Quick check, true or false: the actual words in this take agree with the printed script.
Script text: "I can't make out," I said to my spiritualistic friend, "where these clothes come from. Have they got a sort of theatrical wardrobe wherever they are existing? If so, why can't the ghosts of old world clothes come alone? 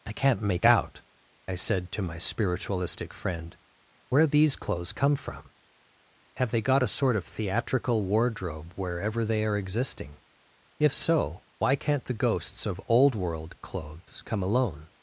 true